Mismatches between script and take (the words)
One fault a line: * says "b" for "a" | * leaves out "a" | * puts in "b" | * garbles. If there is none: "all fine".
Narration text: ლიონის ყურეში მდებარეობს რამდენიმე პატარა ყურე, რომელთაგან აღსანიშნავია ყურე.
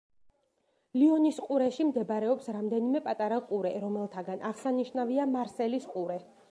* puts in "მარსელის"